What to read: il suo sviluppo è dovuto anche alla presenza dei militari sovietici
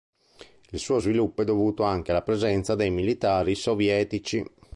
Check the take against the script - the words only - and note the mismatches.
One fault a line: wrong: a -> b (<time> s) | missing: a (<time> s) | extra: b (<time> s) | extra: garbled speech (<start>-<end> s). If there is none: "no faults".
no faults